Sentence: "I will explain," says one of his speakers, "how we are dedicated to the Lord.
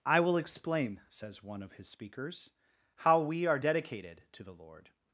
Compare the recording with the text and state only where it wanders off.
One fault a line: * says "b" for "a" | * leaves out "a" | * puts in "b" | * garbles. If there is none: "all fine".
all fine